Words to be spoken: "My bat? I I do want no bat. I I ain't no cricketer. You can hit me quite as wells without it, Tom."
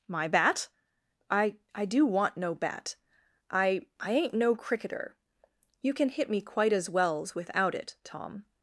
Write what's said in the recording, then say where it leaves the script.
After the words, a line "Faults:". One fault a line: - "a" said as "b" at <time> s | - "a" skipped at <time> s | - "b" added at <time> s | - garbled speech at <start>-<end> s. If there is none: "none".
"My bat? I I do want no bat. I I ain't no cricketer. You can hit me quite as wells without it, Tom."
Faults:
none